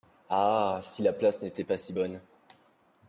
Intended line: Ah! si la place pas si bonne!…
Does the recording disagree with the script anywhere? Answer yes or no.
yes